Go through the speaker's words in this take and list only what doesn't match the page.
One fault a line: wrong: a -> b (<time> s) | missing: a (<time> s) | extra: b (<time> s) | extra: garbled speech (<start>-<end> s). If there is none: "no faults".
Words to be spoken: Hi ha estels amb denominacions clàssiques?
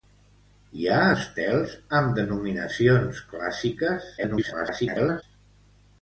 extra: garbled speech (4.2-5.2 s)